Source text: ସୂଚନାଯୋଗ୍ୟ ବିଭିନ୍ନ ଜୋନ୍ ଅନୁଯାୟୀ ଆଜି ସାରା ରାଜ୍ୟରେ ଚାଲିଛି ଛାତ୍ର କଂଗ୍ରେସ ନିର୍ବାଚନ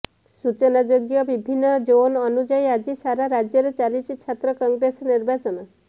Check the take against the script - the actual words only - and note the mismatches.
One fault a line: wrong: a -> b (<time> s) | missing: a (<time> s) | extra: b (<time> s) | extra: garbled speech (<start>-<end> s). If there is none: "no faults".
no faults